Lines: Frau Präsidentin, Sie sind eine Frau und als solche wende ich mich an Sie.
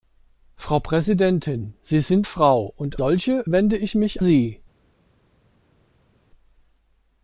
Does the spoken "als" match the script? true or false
false